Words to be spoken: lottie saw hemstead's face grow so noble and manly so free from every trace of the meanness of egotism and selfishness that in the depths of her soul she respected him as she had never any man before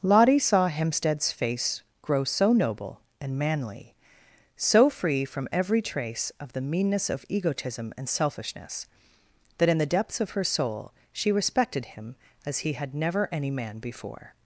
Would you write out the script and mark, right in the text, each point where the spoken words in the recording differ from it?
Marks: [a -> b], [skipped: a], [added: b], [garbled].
lottie saw hemstead's face grow so noble and manly so free from every trace of the meanness of egotism and selfishness that in the depths of her soul she respected him as [she -> he] had never any man before